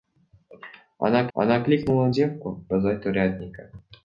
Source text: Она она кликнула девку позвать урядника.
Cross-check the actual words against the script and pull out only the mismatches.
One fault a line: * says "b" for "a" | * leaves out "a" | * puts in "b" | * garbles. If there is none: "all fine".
all fine